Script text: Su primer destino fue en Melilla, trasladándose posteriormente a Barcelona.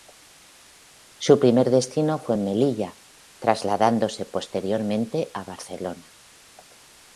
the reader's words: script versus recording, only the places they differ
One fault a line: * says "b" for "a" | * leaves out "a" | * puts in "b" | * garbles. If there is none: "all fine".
all fine